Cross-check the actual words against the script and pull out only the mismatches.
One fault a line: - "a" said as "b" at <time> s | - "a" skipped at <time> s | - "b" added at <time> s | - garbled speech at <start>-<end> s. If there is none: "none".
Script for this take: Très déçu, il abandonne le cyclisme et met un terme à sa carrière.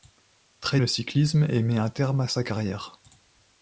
- "déçu il abandonne" skipped at 0.8 s